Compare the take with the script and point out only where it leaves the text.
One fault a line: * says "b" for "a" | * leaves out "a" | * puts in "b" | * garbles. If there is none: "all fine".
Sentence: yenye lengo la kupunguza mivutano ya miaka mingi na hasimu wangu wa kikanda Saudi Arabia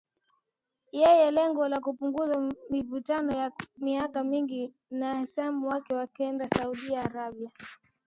* says "wake" for "wangu"